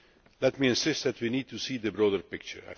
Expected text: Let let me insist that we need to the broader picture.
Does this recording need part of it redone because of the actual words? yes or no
yes